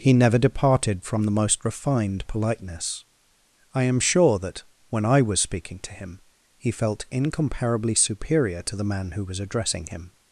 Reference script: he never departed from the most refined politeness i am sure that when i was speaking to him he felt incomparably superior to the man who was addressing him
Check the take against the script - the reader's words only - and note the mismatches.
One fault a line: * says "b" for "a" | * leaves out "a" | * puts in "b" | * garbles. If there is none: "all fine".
all fine